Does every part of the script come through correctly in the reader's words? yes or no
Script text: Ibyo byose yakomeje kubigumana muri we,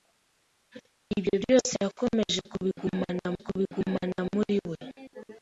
no